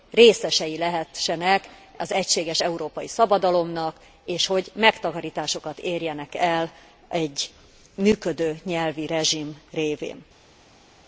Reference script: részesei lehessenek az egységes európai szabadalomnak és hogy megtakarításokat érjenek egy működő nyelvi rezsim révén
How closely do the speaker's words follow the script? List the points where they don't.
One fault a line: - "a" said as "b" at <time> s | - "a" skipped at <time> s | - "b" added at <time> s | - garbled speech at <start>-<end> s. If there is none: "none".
- "el" added at 6.3 s